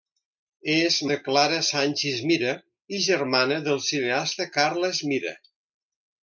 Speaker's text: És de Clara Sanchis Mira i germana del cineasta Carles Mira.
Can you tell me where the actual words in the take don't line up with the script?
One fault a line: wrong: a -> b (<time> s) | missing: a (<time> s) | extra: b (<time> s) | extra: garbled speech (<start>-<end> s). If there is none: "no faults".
no faults